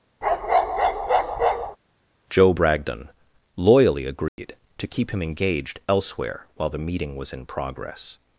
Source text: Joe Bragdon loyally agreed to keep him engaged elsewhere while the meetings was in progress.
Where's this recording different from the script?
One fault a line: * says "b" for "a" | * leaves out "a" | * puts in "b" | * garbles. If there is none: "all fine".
* says "meeting" for "meetings"